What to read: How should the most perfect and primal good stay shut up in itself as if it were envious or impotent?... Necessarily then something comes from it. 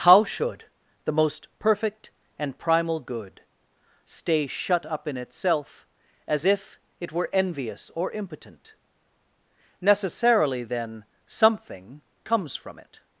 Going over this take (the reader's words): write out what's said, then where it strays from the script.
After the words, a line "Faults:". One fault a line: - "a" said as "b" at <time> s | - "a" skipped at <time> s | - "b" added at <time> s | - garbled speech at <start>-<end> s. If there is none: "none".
How should the most perfect and primal good stay shut up in itself as if it were envious or impotent?... Necessarily then something comes from it.
Faults:
none